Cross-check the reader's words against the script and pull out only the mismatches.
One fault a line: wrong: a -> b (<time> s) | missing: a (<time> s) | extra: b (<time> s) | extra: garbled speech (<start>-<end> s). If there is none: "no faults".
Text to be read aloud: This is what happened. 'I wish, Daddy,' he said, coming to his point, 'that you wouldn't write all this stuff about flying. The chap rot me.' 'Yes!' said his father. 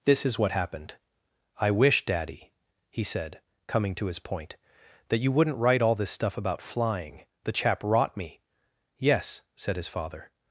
no faults